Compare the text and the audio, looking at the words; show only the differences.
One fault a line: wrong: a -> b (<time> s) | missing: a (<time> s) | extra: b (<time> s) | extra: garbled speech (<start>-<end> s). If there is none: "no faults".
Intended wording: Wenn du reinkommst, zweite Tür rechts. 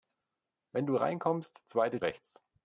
missing: Tür (2.0 s)